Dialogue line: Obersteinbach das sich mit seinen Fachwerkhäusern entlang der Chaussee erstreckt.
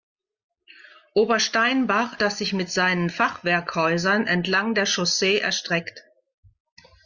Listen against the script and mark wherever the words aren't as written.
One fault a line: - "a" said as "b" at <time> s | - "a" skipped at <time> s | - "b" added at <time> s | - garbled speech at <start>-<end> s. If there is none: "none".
none